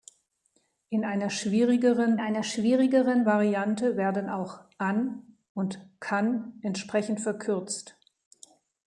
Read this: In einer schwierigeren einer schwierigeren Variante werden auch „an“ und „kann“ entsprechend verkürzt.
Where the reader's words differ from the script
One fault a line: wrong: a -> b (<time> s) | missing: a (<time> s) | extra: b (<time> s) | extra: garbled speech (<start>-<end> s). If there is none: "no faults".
no faults